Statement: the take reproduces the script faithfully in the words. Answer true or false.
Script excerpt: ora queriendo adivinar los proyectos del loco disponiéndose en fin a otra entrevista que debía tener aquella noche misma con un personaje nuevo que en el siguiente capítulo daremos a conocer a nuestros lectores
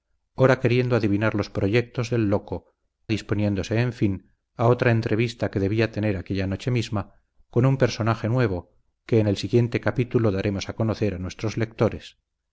true